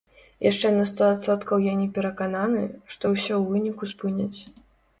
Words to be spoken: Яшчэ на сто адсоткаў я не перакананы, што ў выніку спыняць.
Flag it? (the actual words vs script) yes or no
yes